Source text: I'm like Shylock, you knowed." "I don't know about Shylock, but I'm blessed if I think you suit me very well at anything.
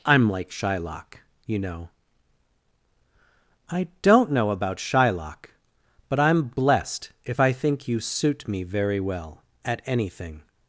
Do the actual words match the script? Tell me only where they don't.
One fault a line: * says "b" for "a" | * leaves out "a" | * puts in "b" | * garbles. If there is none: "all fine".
* says "know" for "knowed"